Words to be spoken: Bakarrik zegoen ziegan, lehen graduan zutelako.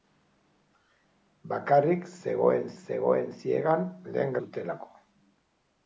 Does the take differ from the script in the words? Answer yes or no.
yes